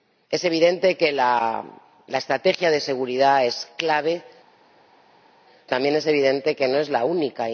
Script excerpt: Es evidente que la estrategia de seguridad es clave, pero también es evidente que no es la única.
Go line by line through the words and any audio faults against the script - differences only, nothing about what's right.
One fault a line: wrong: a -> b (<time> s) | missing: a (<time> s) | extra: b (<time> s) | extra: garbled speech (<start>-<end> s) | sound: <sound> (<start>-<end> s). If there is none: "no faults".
missing: pero (4.2 s)